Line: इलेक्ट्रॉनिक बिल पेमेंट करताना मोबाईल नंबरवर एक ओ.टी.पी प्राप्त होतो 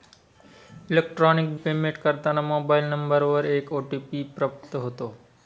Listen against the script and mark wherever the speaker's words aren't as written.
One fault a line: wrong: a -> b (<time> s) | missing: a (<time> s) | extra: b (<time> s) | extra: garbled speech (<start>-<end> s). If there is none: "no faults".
missing: बिल (1.6 s)